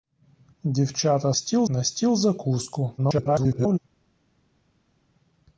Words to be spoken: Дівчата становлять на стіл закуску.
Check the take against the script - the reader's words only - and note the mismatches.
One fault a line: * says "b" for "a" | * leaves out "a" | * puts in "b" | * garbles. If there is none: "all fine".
* says "стіл" for "становлять"
* garbles